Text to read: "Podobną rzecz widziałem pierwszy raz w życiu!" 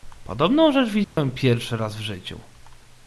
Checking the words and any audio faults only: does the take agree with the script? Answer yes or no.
no